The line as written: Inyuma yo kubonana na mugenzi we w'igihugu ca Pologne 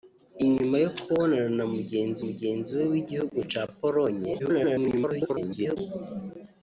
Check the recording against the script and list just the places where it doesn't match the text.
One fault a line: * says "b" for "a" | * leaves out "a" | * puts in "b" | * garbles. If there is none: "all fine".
* puts in "mugenzi"
* garbles